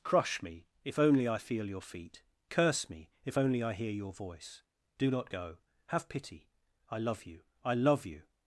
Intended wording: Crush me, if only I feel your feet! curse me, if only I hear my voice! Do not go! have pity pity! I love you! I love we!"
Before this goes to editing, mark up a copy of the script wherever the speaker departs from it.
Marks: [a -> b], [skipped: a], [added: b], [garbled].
Crush me, if only I feel your feet! curse me, if only I hear [my -> your] voice! Do not go! have pity [skipped: pity!] I love you! I love [we!" -> you]